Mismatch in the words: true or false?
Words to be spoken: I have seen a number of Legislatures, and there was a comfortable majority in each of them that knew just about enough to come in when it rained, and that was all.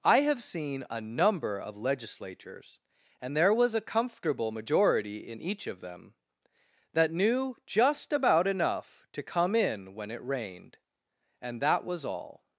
false